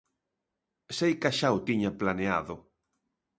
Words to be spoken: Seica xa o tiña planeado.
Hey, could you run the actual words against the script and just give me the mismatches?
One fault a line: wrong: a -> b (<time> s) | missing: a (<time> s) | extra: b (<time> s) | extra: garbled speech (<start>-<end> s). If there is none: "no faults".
no faults